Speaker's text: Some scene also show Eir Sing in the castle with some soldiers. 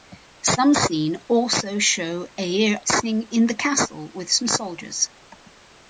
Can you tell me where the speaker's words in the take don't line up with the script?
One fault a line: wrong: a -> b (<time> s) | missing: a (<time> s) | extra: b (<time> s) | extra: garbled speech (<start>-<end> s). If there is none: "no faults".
no faults